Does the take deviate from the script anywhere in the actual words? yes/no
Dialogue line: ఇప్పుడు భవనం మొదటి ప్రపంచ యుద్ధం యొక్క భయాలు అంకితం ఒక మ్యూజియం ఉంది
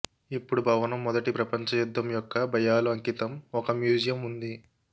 no